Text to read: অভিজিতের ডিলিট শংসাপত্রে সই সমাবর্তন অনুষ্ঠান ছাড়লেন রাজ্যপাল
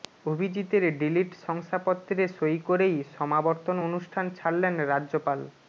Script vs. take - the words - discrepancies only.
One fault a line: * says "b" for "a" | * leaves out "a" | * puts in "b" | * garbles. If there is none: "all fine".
* puts in "করেই"